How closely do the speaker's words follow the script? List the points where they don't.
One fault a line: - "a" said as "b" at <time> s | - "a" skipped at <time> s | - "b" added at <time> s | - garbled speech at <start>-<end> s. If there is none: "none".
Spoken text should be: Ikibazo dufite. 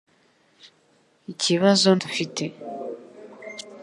none